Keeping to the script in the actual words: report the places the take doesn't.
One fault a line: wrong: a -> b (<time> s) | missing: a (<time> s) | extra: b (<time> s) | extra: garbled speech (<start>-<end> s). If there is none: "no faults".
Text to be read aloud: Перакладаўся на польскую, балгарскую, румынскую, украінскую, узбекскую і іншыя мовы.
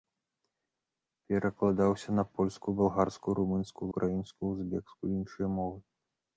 no faults